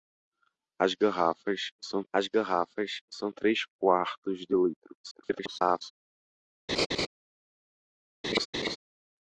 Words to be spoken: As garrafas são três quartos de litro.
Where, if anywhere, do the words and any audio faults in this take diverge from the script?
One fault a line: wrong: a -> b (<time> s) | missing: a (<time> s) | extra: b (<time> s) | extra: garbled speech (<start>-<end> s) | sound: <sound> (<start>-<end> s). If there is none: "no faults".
extra: as garrafas são (2.1 s)
extra: garbled speech (5.0-5.9 s)
sound: laugh (6.7-7.1 s)
sound: laugh (8.2-8.8 s)